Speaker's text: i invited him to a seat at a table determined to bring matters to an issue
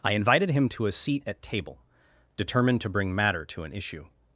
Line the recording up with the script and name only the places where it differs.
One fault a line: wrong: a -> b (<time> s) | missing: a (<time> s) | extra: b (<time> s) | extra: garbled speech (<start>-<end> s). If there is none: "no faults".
missing: a (1.4 s)
wrong: matters -> matter (3.1 s)